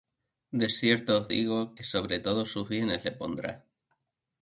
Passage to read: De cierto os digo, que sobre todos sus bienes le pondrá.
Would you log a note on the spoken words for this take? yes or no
no